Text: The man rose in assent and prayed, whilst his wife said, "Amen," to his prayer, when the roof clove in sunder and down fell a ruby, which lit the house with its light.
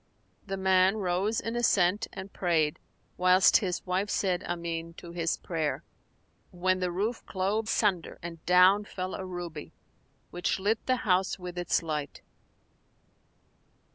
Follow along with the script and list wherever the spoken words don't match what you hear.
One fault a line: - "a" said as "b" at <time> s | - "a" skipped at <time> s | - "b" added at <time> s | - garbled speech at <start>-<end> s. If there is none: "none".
- "in" skipped at 7.7 s